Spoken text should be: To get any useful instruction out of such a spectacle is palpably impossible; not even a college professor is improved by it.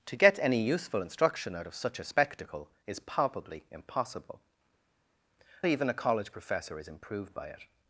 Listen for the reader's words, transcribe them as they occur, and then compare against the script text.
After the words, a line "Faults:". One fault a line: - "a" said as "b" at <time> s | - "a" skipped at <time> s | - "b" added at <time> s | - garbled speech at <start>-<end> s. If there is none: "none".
To get any useful instruction out of such a spectacle is palpably impossible; even a college professor is improved by it.
Faults:
- "not" skipped at 4.4 s